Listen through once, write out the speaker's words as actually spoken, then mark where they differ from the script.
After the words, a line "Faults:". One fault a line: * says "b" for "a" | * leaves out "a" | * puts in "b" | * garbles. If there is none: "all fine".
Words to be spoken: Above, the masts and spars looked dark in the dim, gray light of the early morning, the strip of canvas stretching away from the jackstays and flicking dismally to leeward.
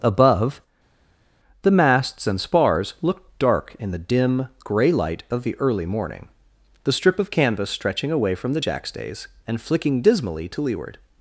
Above, the masts and spars looked dark in the dim, gray light of the early morning, the strip of canvas stretching away from the jackstays and flicking dismally to leeward.
Faults:
all fine